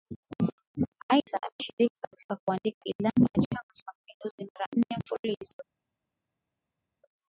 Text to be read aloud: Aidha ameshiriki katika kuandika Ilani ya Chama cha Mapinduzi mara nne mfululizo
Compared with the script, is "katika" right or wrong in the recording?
right